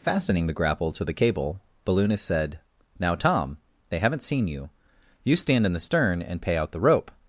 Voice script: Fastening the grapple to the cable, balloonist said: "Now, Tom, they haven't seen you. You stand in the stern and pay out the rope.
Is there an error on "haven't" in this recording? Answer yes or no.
no